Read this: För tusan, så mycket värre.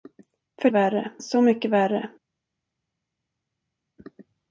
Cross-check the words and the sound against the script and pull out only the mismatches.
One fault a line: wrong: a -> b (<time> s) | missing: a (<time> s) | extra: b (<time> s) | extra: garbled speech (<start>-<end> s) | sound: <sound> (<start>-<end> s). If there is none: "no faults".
wrong: tusan -> värre (0.7 s)